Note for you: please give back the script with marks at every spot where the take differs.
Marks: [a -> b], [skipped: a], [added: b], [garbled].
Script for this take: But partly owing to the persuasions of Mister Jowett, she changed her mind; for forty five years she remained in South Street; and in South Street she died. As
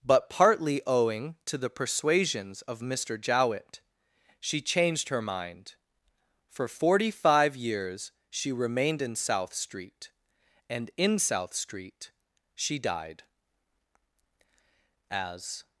But partly owing to the persuasions of Mister Jowett, she changed her mind; for forty five years she remained in South Street; and in South Street she died. As